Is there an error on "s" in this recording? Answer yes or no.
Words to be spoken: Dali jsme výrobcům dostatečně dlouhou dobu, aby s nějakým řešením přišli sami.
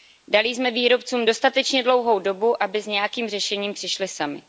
no